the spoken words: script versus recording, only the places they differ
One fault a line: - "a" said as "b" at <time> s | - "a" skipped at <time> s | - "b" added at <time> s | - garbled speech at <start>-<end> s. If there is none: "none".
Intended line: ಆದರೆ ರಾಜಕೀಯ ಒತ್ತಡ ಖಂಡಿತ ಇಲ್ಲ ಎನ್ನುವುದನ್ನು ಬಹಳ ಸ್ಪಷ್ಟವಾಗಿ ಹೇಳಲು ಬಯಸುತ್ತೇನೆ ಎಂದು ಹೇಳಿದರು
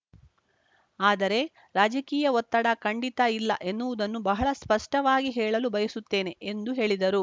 none